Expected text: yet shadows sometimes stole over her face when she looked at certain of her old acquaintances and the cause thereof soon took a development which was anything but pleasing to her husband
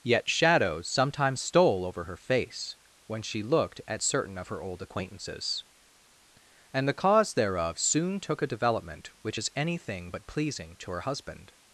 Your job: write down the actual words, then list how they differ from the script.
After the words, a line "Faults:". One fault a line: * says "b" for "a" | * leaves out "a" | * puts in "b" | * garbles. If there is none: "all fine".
yet shadows sometimes stole over her face when she looked at certain of her old acquaintances and the cause thereof soon took a development which is anything but pleasing to her husband
Faults:
* says "is" for "was"